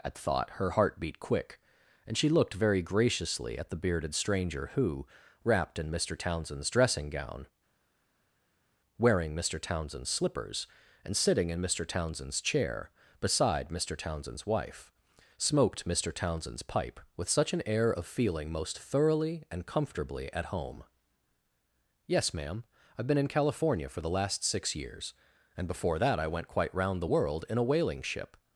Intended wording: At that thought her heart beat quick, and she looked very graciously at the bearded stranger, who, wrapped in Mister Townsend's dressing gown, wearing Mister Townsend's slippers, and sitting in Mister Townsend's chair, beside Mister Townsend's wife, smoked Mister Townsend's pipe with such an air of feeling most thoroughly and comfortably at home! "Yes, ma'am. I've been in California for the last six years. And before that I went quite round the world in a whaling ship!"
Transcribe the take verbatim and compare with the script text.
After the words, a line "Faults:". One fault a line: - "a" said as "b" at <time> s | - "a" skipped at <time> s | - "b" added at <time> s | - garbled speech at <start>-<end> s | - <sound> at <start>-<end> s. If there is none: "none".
At thought her heart beat quick, and she looked very graciously at the bearded stranger, who, wrapped in Mister Townsend's dressing gown, wearing Mister Townsend's slippers, and sitting in Mister Townsend's chair, beside Mister Townsend's wife, smoked Mister Townsend's pipe with such an air of feeling most thoroughly and comfortably at home! "Yes, ma'am. I've been in California for the last six years. And before that I went quite round the world in a whaling ship!"
Faults:
- "that" skipped at 0.1 s